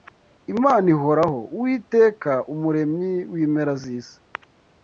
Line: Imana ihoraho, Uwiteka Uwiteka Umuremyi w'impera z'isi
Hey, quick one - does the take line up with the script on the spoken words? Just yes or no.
no